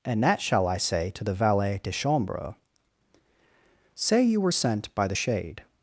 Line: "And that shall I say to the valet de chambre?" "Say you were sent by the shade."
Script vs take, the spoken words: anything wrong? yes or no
no